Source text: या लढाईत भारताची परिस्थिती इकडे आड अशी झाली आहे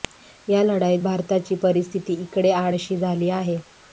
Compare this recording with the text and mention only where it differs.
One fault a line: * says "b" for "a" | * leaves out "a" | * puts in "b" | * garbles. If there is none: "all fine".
all fine